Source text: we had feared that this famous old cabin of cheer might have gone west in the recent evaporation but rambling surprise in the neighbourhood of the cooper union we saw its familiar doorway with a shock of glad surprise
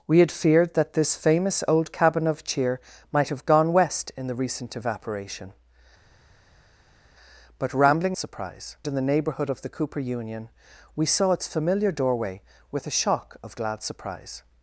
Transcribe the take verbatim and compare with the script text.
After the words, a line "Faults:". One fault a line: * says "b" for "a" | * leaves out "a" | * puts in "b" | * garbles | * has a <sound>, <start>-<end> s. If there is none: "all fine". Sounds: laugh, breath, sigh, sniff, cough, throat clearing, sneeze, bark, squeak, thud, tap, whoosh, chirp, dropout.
we had feared that this famous old cabin of cheer might have gone west in the recent evaporation but rambling surprise in the neighbourhood of the cooper union we saw its familiar doorway with a shock of glad surprise
Faults:
all fine